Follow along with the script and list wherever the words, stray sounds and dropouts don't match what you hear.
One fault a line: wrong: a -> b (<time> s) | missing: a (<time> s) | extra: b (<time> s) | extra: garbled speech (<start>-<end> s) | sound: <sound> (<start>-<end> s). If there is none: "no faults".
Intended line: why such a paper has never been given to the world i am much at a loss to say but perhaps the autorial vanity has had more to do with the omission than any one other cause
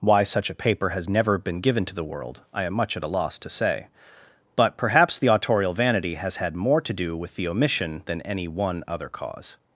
no faults